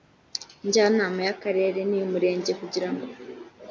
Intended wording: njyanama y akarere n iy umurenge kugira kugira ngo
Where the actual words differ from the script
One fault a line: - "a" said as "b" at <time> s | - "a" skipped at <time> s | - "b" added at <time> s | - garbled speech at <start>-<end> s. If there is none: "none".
- "kugira" skipped at 2.9 s